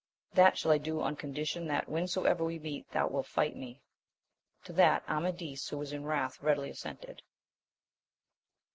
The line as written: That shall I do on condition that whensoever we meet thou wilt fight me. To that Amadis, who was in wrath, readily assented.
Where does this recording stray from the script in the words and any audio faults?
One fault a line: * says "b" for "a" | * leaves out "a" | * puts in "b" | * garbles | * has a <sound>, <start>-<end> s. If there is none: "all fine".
all fine